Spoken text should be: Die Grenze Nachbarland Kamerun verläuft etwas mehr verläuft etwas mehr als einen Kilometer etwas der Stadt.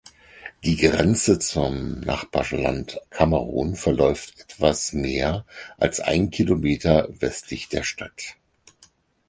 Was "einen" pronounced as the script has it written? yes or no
yes